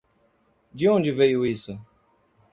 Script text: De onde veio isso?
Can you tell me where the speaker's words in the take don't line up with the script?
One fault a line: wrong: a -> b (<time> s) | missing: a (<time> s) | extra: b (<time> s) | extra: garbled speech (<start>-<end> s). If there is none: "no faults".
no faults